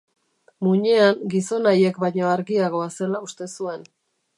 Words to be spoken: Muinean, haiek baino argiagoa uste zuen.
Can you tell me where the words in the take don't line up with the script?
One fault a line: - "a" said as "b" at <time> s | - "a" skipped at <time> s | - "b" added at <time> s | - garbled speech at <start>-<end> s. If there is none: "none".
- "gizon" added at 1.4 s
- "zela" added at 3.0 s